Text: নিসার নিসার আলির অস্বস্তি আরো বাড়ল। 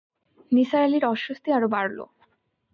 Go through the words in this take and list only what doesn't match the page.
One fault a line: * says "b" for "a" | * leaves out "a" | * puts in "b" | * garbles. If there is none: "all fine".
* leaves out "নিসার"